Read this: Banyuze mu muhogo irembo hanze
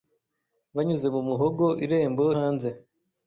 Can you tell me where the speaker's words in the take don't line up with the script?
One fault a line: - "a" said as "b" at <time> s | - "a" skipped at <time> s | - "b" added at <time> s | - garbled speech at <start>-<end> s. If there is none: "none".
none